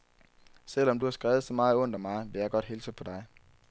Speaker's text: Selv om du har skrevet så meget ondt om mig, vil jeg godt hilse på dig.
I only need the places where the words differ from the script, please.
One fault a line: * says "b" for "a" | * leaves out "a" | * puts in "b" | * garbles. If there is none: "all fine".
all fine